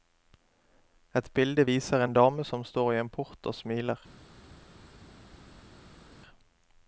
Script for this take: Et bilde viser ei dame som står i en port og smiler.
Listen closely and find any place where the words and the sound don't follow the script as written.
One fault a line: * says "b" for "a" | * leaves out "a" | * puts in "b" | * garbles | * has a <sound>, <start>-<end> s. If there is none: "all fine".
* says "en" for "ei"